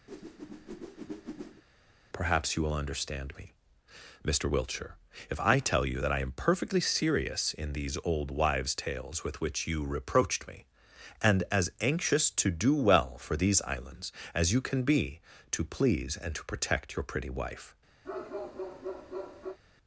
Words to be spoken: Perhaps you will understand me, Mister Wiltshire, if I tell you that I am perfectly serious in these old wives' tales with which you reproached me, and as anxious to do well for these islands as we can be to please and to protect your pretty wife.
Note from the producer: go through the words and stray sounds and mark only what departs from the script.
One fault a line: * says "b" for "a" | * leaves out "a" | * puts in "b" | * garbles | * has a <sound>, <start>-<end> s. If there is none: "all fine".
* has a whoosh, 0.1-1.6 s
* says "you" for "we"
* has a bark, 18.0-19.6 s